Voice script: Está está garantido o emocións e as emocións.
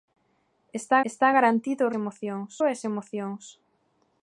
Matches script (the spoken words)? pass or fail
pass